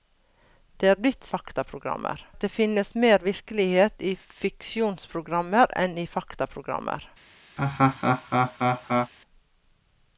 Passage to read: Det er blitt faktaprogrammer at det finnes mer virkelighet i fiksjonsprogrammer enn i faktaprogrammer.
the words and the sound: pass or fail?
fail